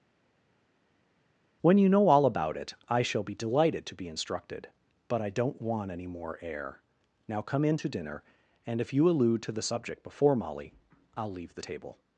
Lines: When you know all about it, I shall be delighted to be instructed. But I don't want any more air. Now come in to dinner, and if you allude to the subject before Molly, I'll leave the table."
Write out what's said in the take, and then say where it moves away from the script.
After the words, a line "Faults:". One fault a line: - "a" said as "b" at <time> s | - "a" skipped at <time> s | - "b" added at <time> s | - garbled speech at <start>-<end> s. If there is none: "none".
When you know all about it, I shall be delighted to be instructed. But I don't want any more air. Now come in to dinner, and if you allude to the subject before Molly, I'll leave the table."
Faults:
none